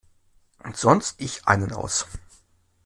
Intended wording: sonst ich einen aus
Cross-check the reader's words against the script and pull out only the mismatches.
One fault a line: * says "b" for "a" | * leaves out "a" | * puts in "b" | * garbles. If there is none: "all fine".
all fine